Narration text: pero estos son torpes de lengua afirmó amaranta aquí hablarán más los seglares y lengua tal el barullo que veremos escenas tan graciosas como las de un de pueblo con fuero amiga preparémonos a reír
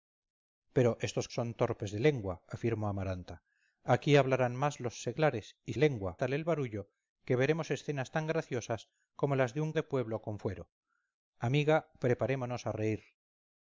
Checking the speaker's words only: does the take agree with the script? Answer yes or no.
yes